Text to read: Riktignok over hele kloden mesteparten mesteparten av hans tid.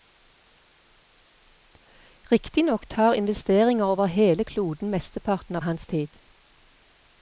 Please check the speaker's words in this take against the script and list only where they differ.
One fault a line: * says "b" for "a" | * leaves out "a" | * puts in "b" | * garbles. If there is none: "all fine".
* puts in "tar investeringer"
* leaves out "mesteparten"